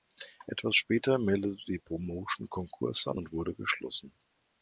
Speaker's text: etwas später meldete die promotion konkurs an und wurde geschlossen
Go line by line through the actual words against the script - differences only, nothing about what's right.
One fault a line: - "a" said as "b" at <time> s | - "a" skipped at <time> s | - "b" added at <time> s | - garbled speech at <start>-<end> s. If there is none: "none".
none